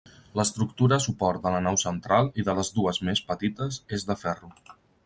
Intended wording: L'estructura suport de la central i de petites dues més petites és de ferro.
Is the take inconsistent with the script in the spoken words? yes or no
yes